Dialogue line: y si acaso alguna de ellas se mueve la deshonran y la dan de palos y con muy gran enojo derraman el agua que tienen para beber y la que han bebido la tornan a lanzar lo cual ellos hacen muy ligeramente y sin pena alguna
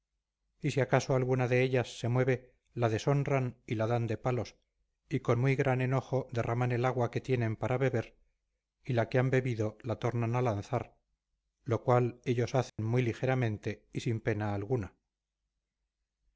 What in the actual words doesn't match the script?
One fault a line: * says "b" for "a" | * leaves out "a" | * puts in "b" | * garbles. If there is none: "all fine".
all fine